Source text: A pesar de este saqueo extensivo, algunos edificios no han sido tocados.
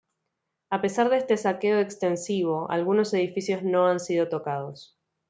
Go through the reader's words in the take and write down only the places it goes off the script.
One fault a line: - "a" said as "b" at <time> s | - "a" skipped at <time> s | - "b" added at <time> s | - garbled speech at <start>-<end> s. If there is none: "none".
none